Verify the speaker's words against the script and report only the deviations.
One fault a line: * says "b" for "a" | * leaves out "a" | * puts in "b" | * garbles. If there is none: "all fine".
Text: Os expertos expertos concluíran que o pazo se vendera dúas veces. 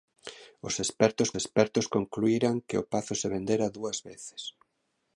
all fine